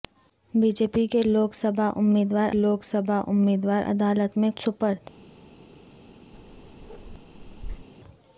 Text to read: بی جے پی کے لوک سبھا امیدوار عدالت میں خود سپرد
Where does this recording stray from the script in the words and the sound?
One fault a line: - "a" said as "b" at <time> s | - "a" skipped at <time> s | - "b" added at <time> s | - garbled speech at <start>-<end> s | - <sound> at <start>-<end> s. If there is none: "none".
- "لوک سبھا امیدوار" added at 2.5 s
- "خود" skipped at 4.5 s
- bark at 6.3-7.9 s